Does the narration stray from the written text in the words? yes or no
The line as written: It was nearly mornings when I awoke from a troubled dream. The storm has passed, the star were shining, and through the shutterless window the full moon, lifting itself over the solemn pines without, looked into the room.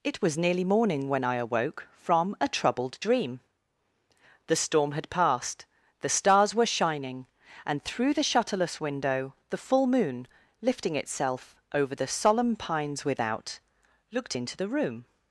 yes